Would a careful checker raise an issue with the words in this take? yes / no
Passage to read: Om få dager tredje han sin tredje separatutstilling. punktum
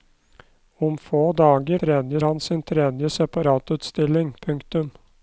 no